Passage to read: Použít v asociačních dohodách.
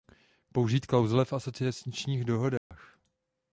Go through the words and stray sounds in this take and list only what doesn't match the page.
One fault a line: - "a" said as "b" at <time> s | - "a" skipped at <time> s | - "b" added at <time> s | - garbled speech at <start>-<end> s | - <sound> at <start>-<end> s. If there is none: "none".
- "klauzule" added at 0.8 s
- dropout at 2.6-2.7 s